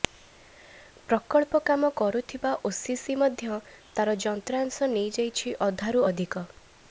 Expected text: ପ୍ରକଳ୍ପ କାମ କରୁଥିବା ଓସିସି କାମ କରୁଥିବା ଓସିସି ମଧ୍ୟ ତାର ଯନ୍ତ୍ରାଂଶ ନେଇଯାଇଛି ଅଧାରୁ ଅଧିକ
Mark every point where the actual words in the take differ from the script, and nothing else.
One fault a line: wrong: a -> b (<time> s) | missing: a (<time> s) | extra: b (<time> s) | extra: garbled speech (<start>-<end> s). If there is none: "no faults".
missing: କାମ କରୁଥିବା ଓସିସି (3.2 s)